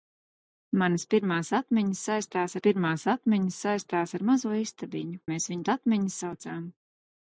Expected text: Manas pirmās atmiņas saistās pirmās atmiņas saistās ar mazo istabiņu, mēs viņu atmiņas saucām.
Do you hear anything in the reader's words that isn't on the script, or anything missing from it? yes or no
no